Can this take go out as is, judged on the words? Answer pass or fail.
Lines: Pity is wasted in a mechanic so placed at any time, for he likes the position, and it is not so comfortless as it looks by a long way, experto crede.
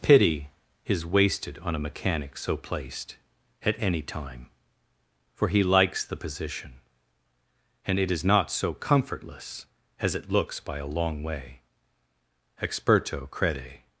fail